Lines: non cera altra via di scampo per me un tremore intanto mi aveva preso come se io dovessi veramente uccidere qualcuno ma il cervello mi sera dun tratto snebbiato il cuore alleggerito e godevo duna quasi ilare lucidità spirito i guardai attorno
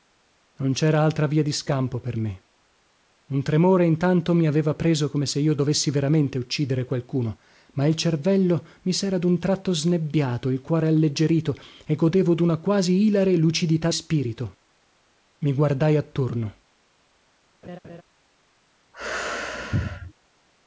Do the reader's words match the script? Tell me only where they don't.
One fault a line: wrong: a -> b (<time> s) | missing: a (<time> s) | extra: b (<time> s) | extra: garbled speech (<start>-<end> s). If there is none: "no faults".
no faults